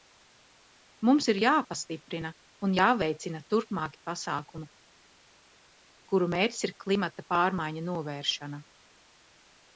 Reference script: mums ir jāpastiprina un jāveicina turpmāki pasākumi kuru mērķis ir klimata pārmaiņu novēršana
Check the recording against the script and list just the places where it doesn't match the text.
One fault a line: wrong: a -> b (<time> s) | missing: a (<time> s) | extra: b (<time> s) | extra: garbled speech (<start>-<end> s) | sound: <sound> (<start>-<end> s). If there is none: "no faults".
no faults